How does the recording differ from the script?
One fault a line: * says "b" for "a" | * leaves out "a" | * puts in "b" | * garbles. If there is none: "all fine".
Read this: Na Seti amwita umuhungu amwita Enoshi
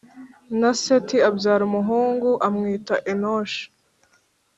* says "abyara" for "amwita"